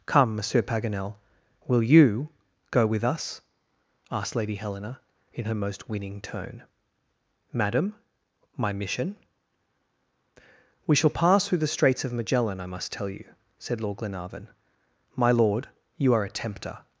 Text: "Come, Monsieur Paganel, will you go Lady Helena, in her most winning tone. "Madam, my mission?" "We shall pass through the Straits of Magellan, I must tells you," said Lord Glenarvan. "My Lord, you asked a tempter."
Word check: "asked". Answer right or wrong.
wrong